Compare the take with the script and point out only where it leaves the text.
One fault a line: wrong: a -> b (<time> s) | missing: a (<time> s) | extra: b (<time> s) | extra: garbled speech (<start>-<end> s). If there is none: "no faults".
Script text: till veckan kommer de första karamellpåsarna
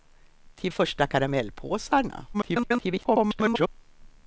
missing: veckan kommer de (0.7 s)
extra: garbled speech (2.3-3.7 s)